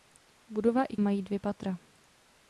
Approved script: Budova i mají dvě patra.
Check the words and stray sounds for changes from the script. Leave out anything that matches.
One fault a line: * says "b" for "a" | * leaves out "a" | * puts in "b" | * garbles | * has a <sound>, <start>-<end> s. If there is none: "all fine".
all fine